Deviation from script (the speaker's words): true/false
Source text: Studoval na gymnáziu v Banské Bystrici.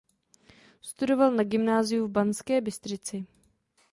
false